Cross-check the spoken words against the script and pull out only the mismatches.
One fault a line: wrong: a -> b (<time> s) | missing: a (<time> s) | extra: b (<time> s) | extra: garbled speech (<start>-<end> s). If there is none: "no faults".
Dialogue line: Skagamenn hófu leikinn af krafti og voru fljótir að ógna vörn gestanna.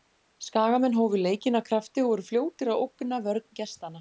no faults